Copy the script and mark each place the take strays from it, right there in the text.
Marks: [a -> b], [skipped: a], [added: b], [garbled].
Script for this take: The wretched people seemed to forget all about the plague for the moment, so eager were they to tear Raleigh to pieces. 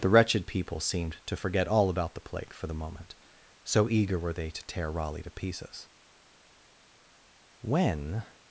The wretched people seemed to forget all about the plague for the moment, so eager were they to tear Raleigh to pieces. [added: When]